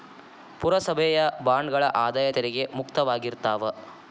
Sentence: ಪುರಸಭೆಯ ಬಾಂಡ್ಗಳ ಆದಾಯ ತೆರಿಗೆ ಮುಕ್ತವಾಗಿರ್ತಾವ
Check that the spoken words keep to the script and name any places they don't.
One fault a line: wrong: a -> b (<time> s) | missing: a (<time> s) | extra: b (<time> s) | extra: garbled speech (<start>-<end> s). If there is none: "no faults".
no faults